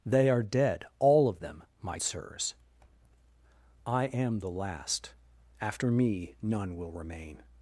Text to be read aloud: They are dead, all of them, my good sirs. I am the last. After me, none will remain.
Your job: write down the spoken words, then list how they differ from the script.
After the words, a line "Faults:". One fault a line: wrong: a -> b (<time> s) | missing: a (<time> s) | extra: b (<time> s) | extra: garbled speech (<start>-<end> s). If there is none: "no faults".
They are dead, all of them, my sirs. I am the last. After me, none will remain.
Faults:
missing: good (2.0 s)